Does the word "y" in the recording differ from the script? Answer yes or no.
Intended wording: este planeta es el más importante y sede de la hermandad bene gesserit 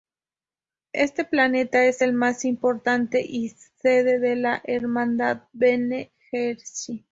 no